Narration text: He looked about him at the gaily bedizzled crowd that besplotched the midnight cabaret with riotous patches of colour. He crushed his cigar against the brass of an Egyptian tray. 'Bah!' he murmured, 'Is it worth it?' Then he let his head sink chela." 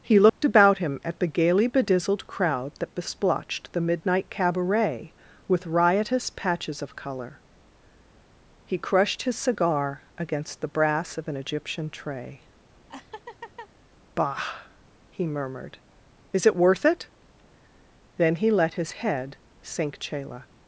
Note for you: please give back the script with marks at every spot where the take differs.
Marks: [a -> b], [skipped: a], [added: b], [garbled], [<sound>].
He looked [dropout] about him at the gaily bedizzled crowd that besplotched the midnight cabaret with riotous patches of colour. He crushed his cigar against the brass of an Egyptian tray. [laugh] 'Bah!' he murmured, 'Is it worth it?' Then he let his head sink chela."